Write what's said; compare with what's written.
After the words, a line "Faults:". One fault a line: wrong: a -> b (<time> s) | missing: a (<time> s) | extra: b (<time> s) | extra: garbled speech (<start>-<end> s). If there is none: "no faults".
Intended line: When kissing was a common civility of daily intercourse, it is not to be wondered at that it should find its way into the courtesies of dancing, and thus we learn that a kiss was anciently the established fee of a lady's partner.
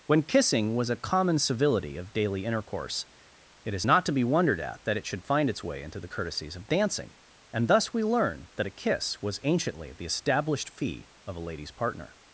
When kissing was a common civility of daily intercourse, it is not to be wondered at that it should find its way into the courtesies of dancing, and thus we learn that a kiss was anciently the established fee of a lady's partner.
Faults:
no faults